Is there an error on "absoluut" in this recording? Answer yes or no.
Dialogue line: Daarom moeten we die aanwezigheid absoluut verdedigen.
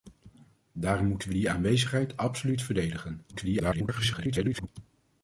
no